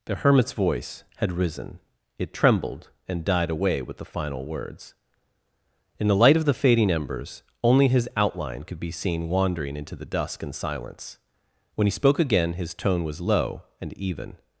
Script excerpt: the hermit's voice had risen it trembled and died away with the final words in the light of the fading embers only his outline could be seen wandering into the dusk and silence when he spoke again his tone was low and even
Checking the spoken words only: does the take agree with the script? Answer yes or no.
yes